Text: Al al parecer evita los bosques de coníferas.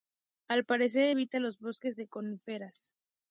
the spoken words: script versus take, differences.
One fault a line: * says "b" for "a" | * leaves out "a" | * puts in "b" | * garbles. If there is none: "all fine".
* leaves out "al"